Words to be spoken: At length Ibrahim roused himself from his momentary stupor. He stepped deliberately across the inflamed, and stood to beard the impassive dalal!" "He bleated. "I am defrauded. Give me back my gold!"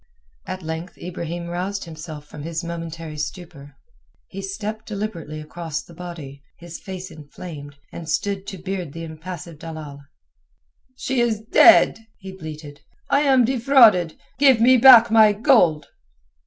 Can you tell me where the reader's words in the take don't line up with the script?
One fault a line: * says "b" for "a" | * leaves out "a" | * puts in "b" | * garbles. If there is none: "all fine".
* puts in "body his face"
* puts in "She is dead"